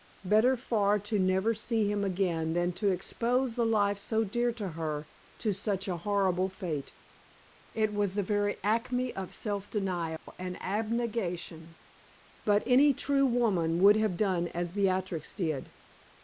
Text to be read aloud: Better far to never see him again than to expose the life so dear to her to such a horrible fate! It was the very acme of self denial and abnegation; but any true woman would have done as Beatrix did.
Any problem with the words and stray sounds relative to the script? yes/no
yes